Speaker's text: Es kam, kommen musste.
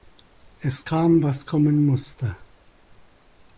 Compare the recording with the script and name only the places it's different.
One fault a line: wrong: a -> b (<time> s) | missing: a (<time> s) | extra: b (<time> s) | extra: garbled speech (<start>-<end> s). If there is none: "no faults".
extra: was (1.2 s)